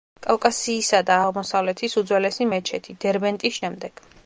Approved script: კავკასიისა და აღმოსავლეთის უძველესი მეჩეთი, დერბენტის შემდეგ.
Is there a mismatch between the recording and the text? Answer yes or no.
no